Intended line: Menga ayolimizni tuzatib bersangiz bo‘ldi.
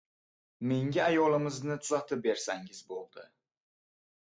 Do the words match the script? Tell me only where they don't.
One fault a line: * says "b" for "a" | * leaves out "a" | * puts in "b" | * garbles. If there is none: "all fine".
all fine